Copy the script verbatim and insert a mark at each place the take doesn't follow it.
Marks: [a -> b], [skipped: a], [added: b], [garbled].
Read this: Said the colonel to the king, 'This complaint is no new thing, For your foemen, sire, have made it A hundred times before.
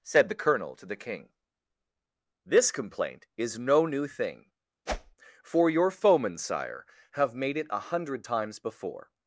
Said the colonel to the king, 'This complaint is no new thing, For your foemen, sire, have made it A hundred times before.